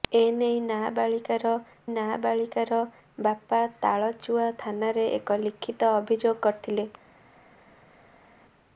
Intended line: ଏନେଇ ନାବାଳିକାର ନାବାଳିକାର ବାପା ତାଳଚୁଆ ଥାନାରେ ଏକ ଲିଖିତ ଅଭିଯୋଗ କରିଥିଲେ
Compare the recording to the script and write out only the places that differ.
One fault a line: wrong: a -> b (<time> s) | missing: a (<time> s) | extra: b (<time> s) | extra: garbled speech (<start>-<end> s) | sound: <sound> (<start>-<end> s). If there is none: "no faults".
no faults